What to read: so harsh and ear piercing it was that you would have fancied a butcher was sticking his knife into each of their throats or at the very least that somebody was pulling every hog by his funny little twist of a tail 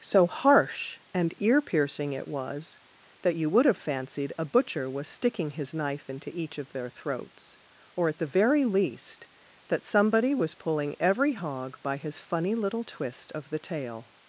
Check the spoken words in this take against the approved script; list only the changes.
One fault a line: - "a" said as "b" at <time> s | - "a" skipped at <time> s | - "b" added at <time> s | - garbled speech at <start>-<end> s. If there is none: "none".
- "a" said as "the" at 13.5 s